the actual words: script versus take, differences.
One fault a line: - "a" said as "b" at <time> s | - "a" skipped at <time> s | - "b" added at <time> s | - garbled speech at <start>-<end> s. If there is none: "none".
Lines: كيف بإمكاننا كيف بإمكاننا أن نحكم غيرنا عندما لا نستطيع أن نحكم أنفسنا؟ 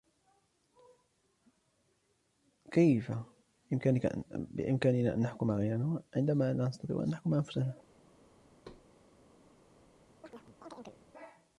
- "كيف بإمكاننا" skipped at 5.1 s